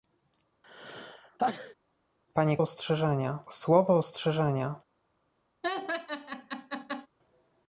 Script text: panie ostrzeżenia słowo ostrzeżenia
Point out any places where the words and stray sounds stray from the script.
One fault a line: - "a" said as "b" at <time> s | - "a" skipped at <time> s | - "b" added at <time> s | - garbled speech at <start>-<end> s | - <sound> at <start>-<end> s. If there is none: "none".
- sneeze at 0.6-1.7 s
- laugh at 5.6-7.1 s